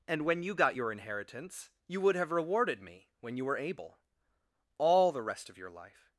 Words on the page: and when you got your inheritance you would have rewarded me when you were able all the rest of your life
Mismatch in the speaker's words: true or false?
false